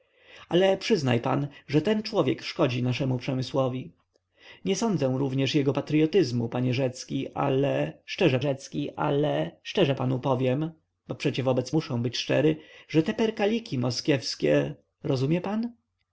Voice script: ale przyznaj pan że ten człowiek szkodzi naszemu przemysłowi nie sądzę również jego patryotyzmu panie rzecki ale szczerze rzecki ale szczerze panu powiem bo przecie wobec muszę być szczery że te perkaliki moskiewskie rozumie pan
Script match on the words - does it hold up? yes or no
yes